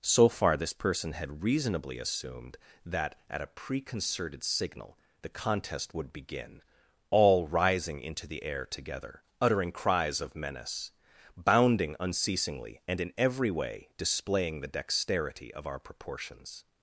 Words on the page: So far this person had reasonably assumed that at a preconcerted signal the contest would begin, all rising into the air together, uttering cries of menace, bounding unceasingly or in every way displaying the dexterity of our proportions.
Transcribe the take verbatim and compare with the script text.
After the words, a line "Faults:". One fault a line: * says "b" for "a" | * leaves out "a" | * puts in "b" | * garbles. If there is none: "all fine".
So far this person had reasonably assumed that at a preconcerted signal the contest would begin, all rising into the air together, uttering cries of menace, bounding unceasingly and in every way displaying the dexterity of our proportions.
Faults:
* says "and" for "or"